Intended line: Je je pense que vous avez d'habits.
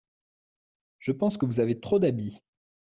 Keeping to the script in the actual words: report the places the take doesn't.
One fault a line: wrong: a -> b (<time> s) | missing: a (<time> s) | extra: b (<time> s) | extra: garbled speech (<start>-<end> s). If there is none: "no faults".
missing: je (1.1 s)
extra: trop (1.8 s)